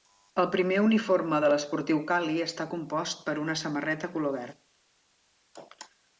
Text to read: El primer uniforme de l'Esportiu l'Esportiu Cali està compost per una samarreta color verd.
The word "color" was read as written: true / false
true